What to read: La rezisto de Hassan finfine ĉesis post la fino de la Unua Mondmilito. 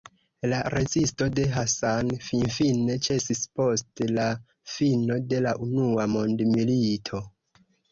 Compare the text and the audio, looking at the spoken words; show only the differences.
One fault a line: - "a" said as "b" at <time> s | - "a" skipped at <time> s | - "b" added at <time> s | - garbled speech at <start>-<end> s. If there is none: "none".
none